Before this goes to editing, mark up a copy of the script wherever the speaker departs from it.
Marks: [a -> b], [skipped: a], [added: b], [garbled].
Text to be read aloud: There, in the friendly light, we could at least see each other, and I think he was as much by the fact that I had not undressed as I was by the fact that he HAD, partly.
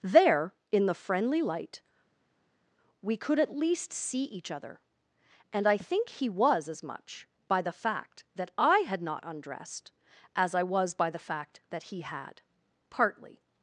There, in the friendly light, we could at least see each other, and I think he was as much by the fact that I had not undressed as I was by the fact that he HAD, partly.